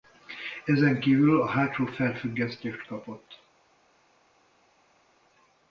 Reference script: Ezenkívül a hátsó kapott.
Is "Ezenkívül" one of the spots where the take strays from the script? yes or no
no